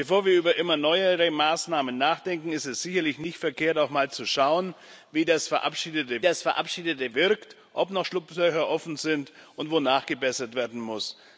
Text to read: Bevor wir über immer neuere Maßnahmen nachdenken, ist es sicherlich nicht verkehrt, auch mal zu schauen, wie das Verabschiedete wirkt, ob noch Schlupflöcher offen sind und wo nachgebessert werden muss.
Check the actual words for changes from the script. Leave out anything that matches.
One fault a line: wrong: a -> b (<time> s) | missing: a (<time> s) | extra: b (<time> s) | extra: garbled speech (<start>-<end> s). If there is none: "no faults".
extra: das Verabschiedete (6.2 s)